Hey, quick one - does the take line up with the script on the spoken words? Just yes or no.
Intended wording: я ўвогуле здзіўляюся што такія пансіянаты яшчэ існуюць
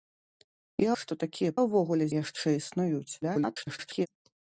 no